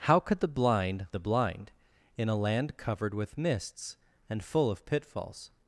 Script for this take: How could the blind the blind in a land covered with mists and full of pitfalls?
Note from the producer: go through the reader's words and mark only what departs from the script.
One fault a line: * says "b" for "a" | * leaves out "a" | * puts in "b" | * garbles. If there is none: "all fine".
all fine